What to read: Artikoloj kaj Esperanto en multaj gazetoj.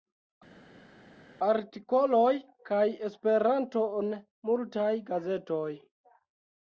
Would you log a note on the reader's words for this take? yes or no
no